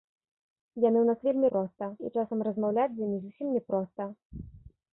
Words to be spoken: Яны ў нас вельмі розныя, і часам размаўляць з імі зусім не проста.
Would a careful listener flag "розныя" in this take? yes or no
yes